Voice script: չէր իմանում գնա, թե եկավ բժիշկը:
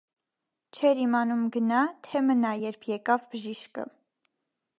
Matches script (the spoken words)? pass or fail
fail